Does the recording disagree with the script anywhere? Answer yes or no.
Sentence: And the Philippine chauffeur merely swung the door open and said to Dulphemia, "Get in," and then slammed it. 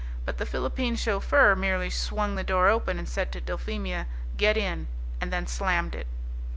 yes